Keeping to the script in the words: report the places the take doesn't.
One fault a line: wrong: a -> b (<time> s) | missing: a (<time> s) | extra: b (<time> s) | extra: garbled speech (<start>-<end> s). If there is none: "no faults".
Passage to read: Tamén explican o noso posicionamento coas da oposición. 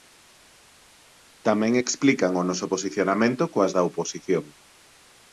no faults